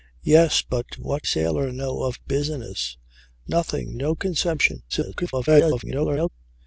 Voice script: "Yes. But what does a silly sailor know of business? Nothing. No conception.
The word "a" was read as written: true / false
false